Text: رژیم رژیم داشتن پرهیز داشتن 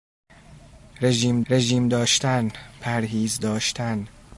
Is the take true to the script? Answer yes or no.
yes